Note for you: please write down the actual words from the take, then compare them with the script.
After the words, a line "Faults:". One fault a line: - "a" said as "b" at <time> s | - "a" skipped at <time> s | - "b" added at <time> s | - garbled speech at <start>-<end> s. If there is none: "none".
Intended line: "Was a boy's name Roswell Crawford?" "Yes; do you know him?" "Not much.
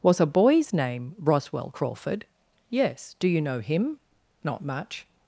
"Was a boy's name Roswell Crawford?" "Yes; do you know him?" "Not much.
Faults:
none